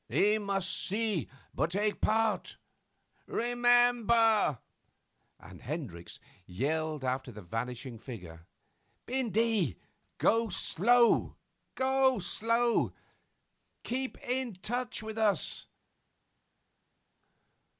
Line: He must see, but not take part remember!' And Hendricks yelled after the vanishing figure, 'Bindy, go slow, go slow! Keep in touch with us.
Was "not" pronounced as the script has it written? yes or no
no